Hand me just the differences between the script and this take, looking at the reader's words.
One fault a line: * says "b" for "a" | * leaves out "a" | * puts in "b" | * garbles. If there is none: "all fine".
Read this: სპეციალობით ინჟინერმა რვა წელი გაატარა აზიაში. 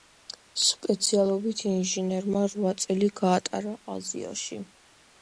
all fine